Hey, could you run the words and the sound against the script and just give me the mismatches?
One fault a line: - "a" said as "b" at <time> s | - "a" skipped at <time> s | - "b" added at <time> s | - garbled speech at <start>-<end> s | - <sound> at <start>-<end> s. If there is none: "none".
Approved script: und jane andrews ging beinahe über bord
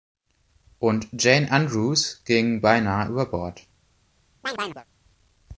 - chirp at 4.4-4.9 s